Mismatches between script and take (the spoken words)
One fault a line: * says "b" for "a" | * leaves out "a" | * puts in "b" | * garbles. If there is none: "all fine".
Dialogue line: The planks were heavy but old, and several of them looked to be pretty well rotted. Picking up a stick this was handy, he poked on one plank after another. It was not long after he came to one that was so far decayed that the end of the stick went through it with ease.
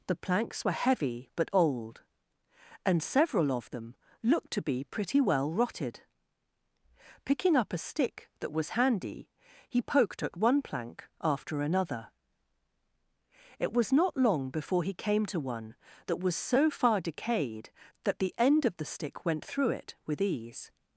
* says "that" for "this"
* says "at" for "on"
* says "before" for "after"